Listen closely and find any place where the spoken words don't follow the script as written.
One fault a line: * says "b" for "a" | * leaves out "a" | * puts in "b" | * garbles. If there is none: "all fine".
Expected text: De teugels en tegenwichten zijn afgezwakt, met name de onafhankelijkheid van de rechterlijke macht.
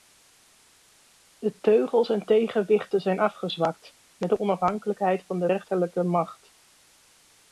* leaves out "name"